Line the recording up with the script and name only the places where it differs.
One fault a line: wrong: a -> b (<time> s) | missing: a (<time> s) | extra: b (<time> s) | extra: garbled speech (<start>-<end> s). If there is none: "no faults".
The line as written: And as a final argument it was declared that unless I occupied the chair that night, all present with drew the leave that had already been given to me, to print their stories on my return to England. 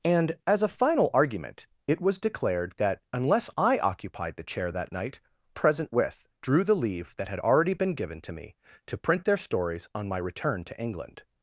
missing: all (5.2 s)